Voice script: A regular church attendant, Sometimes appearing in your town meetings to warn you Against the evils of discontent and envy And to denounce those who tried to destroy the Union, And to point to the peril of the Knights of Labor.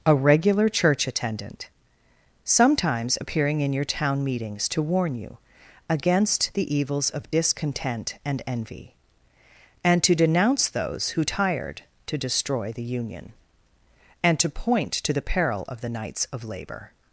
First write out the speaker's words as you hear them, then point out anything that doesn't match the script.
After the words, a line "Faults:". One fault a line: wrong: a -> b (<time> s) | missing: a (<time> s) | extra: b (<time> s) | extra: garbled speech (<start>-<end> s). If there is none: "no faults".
A regular church attendant, Sometimes appearing in your town meetings to warn you Against the evils of discontent and envy And to denounce those who tired to destroy the Union, And to point to the peril of the Knights of Labor.
Faults:
wrong: tried -> tired (11.2 s)